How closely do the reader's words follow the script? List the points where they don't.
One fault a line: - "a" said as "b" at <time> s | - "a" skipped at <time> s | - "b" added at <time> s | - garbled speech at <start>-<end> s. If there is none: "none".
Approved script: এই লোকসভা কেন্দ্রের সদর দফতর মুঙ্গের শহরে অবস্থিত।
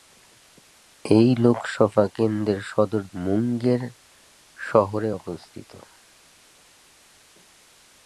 - "দফতর" skipped at 3.0 s